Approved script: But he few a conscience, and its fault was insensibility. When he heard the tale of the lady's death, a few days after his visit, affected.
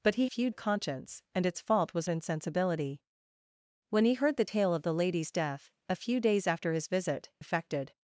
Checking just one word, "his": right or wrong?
right